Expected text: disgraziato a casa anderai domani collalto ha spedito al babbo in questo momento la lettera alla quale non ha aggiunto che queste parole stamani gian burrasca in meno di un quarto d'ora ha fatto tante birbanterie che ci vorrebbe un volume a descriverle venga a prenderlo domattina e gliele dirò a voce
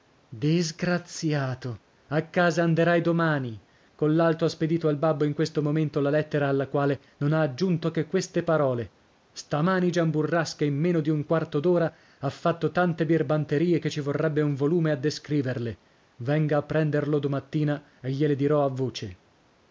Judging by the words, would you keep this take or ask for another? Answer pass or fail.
pass